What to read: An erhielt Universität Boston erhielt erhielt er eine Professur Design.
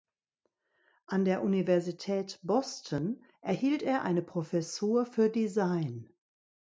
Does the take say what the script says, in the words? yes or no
no